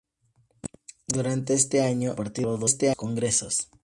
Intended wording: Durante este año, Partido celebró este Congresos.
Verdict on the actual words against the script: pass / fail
pass